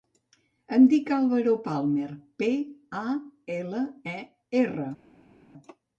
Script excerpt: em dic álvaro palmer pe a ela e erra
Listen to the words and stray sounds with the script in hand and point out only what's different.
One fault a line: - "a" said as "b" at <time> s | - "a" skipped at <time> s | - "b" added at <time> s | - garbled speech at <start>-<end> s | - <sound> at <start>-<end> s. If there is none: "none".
none